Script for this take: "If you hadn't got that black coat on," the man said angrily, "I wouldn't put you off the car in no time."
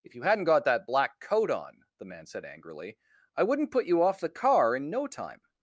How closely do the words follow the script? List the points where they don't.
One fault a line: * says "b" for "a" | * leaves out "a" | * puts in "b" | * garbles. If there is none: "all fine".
all fine